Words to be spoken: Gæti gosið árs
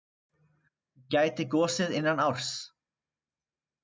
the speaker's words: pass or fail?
fail